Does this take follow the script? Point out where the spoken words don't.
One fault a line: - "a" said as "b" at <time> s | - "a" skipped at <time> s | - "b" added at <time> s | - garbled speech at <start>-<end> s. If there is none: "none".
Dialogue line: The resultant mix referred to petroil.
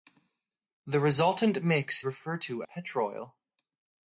none